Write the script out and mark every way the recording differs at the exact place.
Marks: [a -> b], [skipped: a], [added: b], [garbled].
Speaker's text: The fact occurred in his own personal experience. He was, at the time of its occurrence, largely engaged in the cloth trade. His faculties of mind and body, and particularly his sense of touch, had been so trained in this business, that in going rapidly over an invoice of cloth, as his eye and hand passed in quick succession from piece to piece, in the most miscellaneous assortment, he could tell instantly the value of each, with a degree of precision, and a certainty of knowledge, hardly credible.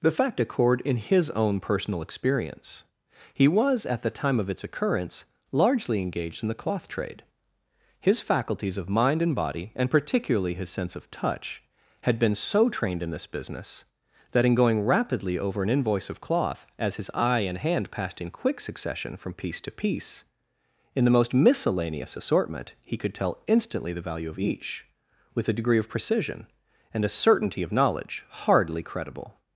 The fact occurred in his own personal experience. He was, at the time of its occurrence, largely engaged in the cloth trade. His faculties of mind and body, and particularly his sense of touch, had been so trained in this business, that in going rapidly over an invoice of cloth, as his eye and hand passed in quick succession from piece to piece, in the most miscellaneous assortment, he could tell instantly the value of each, with a degree of precision, and a certainty of knowledge, hardly credible.